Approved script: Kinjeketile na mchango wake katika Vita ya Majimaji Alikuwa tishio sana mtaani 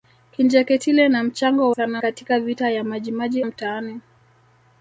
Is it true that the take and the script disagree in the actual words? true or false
true